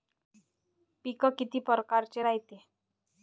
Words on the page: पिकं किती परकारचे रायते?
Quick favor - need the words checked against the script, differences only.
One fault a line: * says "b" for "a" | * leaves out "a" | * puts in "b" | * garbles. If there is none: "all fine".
all fine